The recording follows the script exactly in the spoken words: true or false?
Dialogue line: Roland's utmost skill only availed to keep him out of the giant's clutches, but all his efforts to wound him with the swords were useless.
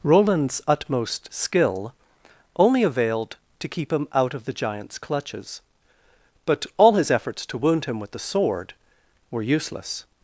false